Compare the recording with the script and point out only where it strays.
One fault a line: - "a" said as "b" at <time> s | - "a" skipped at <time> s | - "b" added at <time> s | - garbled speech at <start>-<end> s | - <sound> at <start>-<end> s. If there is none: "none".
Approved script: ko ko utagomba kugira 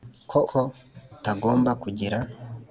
none